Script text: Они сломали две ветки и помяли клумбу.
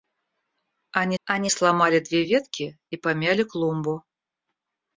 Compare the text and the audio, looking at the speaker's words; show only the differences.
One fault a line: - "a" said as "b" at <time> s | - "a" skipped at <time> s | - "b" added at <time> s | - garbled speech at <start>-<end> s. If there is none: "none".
- "они" added at 1.2 s